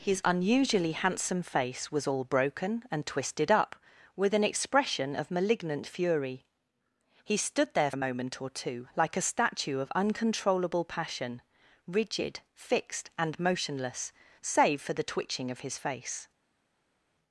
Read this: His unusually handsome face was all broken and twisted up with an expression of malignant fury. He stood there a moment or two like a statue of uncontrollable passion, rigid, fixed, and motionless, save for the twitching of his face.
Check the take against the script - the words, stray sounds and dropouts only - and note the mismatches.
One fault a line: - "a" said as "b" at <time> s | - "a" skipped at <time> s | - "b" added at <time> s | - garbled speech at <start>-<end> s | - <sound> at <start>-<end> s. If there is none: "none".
none